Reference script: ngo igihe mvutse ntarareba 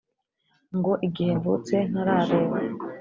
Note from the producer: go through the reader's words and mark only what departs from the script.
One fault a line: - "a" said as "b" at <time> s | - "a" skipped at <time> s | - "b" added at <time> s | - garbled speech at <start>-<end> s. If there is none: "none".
none